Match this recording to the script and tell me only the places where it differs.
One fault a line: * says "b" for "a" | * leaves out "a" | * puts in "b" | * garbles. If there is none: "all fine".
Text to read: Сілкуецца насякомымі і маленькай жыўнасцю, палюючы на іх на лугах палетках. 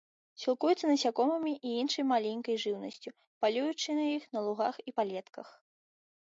* puts in "іншай"
* puts in "і"